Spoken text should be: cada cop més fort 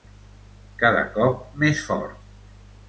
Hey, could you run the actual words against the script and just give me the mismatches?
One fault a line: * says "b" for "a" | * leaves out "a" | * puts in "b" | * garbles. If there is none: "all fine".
all fine